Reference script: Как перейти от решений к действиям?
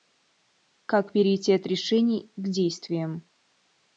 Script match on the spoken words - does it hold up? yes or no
yes